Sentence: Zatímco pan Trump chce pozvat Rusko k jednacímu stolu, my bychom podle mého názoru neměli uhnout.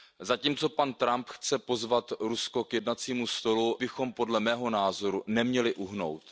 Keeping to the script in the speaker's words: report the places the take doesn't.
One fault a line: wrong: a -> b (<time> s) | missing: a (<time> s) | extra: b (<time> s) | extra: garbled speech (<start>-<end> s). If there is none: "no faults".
missing: my (3.8 s)